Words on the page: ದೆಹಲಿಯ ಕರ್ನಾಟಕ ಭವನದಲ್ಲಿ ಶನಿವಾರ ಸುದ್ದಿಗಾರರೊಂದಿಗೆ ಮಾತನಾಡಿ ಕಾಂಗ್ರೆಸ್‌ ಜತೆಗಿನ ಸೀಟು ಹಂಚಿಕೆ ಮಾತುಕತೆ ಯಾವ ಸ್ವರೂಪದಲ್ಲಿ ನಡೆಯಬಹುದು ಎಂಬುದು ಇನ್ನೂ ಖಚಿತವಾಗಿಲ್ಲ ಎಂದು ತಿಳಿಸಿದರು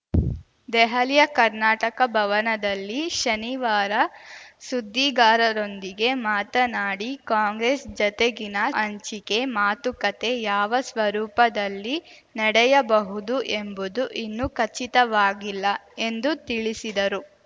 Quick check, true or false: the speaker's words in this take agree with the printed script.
false